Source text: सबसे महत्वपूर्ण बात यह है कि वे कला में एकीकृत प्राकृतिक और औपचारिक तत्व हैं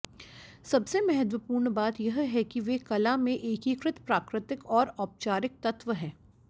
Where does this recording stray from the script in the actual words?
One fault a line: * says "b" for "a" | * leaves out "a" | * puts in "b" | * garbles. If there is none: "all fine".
all fine